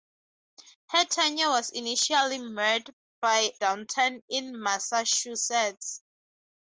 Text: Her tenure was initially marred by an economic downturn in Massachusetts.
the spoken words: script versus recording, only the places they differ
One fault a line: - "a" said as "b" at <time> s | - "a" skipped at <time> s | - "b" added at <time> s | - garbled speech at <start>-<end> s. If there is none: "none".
- "an economic" skipped at 3.5 s